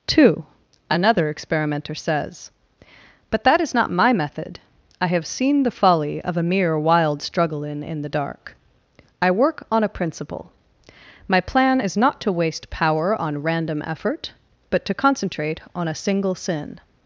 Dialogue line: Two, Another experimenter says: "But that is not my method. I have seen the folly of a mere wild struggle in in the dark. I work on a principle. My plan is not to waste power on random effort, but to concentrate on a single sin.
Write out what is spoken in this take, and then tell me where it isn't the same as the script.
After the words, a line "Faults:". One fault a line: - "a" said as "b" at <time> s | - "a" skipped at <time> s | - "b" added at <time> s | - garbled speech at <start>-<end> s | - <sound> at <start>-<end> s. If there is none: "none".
Two, Another experimenter says: "But that is not my method. I have seen the folly of a mere wild struggle in in the dark. I work on a principle. My plan is not to waste power on random effort, but to concentrate on a single sin.
Faults:
none